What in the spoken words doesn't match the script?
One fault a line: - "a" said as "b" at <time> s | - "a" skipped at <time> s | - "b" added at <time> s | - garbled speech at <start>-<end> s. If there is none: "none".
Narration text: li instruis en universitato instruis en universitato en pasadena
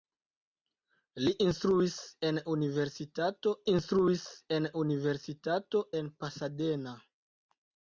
none